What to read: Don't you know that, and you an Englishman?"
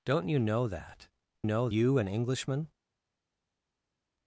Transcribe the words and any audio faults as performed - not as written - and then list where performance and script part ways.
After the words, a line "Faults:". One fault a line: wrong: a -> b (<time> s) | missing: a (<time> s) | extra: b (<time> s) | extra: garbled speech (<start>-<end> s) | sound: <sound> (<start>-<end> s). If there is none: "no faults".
Don't you know that, know you an Englishman?"
Faults:
wrong: and -> know (1.4 s)